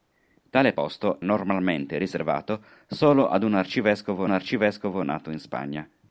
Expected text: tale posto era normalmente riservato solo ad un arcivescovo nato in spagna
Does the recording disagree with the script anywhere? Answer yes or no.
yes